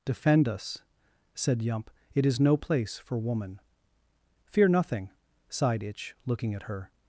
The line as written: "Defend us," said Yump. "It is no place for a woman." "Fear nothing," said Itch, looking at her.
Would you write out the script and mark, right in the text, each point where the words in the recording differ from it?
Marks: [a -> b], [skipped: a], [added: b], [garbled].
"Defend us," said Yump. "It is no place for [skipped: a] woman." "Fear nothing," [said -> sighed] Itch, looking at her.